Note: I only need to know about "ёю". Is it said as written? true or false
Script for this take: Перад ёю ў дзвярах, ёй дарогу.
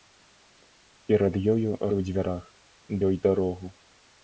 true